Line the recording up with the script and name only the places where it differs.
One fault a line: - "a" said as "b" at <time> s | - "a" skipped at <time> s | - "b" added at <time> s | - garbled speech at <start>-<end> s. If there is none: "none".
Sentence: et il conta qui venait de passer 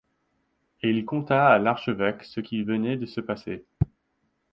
- "à l'archevêque ce" added at 1.5 s
- "se" added at 3.0 s